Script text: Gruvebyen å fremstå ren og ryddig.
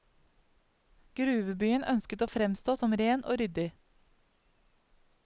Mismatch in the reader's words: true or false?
true